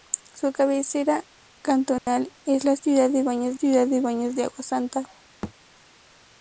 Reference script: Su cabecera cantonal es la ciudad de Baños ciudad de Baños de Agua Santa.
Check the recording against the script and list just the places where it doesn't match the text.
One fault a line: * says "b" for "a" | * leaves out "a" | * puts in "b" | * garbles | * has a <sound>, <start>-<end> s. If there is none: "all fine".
* has a dropout, 2.0-2.1 s
* has a thud, 5.4-5.5 s